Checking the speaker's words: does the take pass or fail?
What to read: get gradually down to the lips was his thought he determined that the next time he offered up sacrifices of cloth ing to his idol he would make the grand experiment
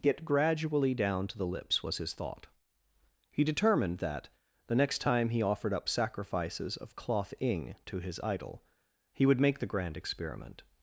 pass